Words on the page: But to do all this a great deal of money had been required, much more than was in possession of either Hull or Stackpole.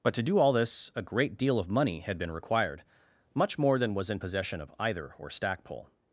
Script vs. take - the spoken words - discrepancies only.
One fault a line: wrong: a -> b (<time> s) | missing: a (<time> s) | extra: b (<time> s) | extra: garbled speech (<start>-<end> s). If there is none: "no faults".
missing: Hull (5.1 s)